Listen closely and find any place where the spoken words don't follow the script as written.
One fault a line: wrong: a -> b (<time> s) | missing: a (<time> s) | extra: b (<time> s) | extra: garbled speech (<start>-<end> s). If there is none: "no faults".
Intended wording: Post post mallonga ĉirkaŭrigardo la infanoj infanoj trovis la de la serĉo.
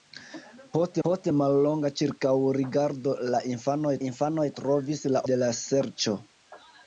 no faults